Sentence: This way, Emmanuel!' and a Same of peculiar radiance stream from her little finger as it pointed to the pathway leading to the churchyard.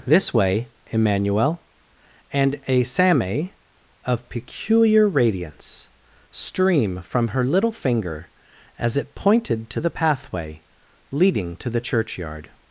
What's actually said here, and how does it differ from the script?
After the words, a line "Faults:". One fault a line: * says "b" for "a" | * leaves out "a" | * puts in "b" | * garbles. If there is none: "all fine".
This way, Emmanuel!' and a Same of peculiar radiance stream from her little finger as it pointed to the pathway leading to the churchyard.
Faults:
all fine